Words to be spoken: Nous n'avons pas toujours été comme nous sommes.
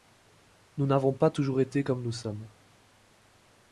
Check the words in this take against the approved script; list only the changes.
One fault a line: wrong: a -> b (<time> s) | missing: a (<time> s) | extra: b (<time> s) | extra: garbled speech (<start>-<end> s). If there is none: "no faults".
no faults